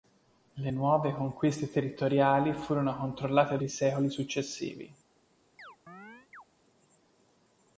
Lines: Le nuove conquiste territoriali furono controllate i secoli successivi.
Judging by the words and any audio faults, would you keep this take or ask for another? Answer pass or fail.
fail